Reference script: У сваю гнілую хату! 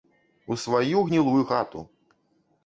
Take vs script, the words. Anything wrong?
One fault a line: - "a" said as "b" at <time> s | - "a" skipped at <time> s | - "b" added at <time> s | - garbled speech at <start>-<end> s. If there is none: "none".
none